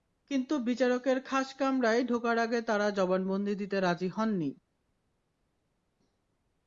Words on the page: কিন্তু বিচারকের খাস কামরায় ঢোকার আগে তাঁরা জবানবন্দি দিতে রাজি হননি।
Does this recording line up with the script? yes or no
yes